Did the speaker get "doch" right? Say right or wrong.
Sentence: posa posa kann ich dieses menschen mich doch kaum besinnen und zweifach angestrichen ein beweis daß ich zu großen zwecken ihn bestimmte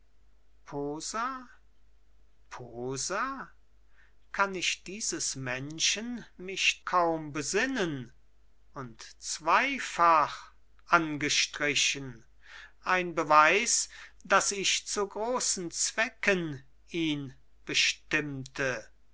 wrong